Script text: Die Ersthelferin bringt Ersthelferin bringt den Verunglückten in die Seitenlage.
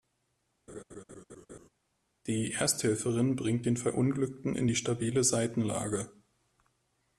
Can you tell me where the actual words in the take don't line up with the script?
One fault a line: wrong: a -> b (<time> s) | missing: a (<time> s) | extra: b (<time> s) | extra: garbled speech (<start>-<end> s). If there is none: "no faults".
missing: Ersthelferin bringt (3.7 s)
extra: stabile (4.7 s)